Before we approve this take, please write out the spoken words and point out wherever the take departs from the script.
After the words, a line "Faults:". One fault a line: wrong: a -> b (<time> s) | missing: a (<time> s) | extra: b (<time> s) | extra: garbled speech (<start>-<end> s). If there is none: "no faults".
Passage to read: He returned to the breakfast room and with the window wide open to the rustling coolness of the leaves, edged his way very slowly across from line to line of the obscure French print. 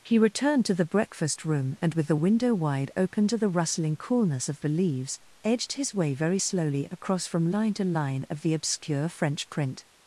He returned to the breakfast room and with the window wide open to the rustling coolness of the leaves, edged his way very slowly across from line to line of the obscure French print.
Faults:
no faults